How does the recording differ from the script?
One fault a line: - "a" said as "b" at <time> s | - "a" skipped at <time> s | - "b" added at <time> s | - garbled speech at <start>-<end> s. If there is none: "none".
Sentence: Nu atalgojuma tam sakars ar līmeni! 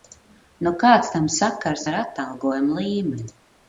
- "atalgojuma" said as "kāds" at 0.8 s
- "atalgojuma" added at 2.0 s